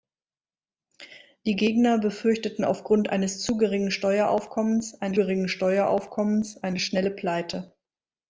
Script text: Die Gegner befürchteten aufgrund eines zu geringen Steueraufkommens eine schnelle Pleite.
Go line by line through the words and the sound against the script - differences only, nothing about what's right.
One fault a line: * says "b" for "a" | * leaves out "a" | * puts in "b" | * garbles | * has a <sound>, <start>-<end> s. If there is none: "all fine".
* puts in "geringen Steueraufkommens eine"